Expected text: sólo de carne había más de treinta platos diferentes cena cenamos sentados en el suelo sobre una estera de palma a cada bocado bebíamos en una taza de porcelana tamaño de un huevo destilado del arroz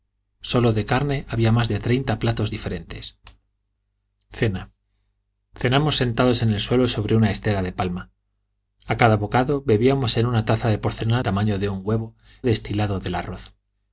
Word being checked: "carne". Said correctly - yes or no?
yes